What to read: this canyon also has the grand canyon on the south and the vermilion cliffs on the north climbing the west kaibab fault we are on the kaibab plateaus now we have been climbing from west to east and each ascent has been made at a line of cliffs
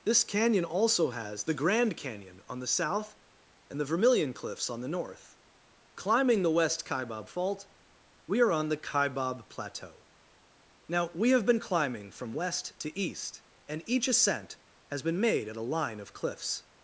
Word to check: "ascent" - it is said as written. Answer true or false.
true